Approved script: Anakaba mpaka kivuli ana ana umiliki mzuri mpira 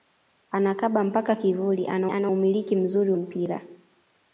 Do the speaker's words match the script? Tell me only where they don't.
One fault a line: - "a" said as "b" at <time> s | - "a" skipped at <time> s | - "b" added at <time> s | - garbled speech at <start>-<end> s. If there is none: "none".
none